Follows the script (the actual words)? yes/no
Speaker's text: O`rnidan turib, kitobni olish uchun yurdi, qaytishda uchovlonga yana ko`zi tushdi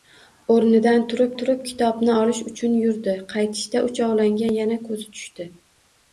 no